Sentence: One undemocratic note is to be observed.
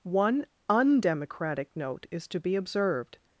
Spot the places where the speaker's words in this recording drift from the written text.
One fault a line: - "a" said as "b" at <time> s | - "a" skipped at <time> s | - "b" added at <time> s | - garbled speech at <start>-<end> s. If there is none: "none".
none